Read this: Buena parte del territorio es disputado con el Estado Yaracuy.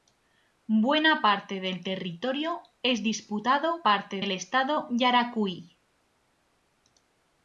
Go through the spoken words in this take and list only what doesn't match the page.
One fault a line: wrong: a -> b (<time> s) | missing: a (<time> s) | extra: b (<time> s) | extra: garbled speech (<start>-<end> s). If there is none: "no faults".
wrong: con -> parte (3.8 s)